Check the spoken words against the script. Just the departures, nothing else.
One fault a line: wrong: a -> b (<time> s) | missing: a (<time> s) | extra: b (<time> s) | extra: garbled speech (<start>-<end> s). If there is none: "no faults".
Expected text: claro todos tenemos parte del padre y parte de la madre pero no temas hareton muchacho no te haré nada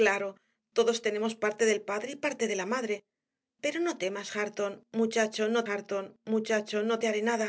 extra: hareton muchacho no (5.7 s)